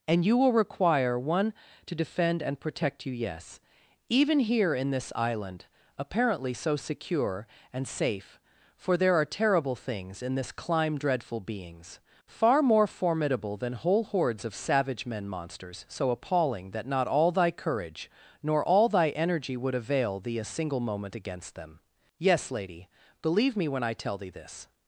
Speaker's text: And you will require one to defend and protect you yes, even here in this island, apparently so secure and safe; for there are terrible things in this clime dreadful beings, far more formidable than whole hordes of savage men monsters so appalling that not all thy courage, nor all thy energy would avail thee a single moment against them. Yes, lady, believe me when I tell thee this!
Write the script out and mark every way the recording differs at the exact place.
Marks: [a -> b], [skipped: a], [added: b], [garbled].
And you will require one to defend and protect you yes, even here in this island, apparently so secure and safe; for there are terrible things in this clime dreadful beings, far more formidable than whole hordes of savage men monsters so appalling that not all thy courage, nor all thy energy would avail thee a single moment against them. Yes, lady, believe me when I tell thee this!